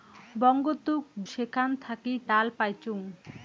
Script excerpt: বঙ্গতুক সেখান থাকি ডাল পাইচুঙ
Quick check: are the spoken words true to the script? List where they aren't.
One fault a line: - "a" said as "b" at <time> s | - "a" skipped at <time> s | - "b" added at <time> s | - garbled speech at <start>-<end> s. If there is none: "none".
none